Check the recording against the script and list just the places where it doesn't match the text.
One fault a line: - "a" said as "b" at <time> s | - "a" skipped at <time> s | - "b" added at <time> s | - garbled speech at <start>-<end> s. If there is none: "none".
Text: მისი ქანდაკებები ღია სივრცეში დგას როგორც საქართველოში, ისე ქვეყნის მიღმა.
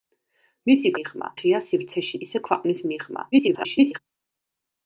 - "ქანდაკებები" said as "მიღმა" at 1.0 s
- "დგას როგორც საქართველოში" skipped at 2.2 s
- garbled speech at 3.3-4.0 s